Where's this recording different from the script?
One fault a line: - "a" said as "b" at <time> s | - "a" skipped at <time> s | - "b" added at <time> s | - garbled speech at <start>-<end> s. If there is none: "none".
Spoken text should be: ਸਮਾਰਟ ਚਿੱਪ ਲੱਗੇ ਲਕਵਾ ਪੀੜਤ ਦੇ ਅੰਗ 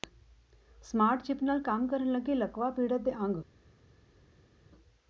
- "ਨਾਲ ਕੰਮ ਕਰਨ" added at 1.4 s